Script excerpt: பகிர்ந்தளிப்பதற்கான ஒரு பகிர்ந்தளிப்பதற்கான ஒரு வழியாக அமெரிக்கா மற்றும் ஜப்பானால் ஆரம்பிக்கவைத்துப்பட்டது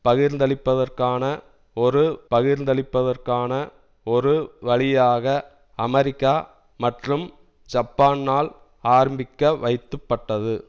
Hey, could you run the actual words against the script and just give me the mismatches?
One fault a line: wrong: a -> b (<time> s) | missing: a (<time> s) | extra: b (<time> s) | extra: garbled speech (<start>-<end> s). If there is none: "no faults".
no faults